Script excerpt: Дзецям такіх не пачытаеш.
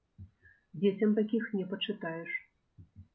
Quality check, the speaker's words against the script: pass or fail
pass